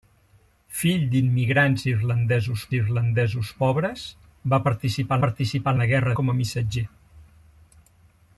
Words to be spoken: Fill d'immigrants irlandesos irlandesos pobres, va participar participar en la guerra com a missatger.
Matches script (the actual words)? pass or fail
pass